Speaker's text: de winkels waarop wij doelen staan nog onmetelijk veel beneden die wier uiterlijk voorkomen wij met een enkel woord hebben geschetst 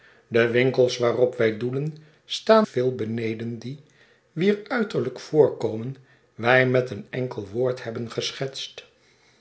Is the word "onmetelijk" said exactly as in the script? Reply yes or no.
no